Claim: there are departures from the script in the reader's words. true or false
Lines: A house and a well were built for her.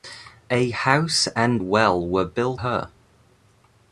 true